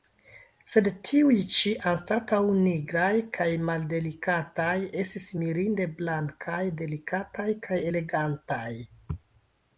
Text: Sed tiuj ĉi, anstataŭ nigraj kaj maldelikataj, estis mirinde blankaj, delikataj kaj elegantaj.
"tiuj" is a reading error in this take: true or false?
false